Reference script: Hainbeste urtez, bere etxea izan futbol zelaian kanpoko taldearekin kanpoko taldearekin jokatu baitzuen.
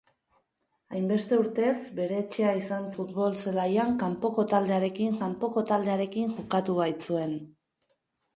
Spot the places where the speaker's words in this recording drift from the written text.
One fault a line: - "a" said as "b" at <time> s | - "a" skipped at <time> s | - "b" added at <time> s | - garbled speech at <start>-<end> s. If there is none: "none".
none